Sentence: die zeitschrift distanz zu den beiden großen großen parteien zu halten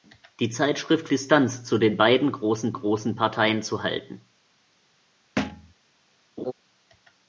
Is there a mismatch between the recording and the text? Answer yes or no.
no